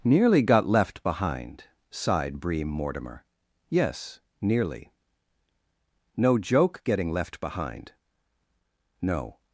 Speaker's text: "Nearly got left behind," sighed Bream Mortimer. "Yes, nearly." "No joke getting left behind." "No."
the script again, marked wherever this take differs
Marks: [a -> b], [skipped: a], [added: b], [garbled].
"Nearly got left behind," sighed Bream Mortimer. "Yes, nearly." "No joke getting left behind." "No."